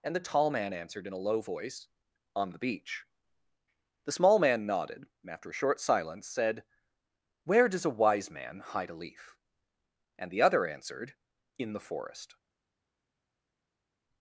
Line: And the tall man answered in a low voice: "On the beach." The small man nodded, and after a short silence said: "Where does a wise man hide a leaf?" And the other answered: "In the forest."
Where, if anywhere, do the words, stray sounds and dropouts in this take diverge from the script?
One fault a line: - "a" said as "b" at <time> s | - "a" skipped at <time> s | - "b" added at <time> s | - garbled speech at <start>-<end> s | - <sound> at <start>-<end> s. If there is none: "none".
none